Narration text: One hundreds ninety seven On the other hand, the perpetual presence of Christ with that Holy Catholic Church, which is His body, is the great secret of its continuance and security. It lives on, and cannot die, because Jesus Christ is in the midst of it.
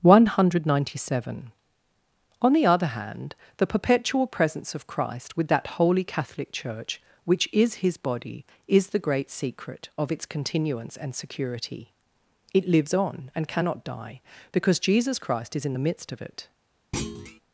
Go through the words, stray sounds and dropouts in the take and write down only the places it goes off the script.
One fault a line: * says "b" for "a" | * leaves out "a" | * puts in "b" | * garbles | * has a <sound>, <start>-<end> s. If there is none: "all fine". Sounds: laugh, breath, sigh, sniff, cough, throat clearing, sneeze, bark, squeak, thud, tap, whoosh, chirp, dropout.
* says "hundred" for "hundreds"
* has a thud, 16.9-17.4 s